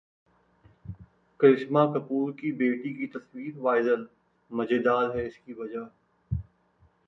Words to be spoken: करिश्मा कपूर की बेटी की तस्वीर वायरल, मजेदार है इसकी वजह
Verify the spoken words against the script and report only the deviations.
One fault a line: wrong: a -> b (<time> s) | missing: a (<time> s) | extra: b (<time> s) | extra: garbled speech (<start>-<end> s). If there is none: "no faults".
no faults